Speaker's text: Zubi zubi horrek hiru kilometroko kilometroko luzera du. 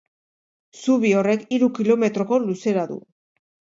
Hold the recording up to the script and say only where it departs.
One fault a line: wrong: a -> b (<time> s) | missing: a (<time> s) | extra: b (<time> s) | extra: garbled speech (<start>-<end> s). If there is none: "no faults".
missing: zubi (1.1 s)
missing: kilometroko (2.4 s)